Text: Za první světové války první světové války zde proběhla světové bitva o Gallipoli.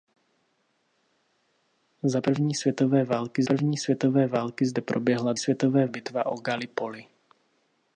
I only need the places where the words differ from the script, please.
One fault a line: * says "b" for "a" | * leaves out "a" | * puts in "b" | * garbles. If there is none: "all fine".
all fine